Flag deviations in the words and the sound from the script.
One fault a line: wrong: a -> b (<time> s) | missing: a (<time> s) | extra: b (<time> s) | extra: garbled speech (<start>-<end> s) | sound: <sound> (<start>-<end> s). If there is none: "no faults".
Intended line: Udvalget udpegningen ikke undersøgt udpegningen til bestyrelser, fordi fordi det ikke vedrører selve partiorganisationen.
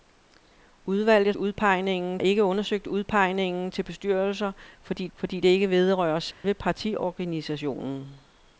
sound: dropout (6.3-6.4 s)